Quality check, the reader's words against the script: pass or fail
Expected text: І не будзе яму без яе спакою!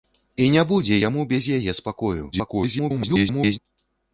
fail